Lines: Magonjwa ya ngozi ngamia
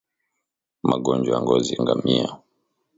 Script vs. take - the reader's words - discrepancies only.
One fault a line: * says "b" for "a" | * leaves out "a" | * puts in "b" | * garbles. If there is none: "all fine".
all fine